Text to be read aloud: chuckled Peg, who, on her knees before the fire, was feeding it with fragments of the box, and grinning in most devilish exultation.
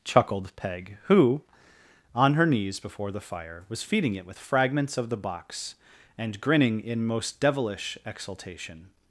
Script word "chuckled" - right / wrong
right